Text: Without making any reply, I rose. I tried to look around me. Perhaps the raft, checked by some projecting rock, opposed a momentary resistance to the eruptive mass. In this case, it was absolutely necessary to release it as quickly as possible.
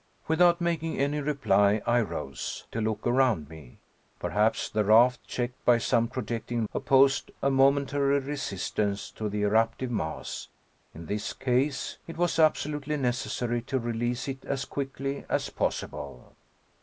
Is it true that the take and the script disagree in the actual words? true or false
true